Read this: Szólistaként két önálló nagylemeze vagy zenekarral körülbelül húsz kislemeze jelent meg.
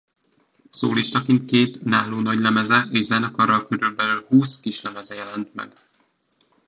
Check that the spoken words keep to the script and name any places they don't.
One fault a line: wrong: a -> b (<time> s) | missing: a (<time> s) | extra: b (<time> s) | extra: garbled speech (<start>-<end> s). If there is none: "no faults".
wrong: vagy -> és (2.9 s)